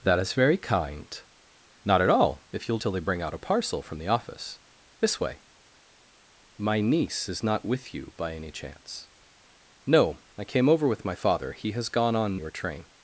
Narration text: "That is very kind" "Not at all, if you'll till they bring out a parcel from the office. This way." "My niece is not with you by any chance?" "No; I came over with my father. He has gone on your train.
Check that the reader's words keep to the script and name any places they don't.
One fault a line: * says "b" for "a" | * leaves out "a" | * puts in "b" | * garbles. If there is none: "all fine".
all fine